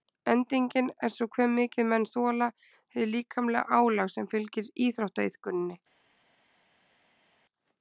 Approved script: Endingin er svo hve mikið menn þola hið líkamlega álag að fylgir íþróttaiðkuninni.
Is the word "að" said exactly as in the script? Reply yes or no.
no